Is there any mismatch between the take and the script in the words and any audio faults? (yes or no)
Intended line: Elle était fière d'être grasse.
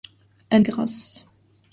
yes